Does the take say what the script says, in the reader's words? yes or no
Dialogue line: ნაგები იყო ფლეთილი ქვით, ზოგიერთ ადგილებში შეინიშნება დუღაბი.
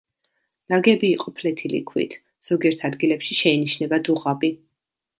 yes